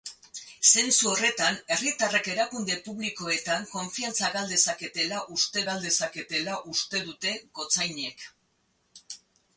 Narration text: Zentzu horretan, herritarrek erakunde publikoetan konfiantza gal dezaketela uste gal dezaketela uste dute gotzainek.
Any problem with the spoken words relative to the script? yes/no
no